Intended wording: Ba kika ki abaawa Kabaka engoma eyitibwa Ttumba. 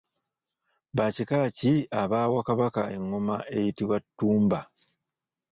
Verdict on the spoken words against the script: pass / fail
pass